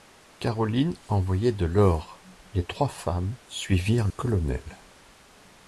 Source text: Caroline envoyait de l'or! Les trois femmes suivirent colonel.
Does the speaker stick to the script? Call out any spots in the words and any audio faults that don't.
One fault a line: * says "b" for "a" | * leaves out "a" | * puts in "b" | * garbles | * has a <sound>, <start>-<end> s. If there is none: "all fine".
all fine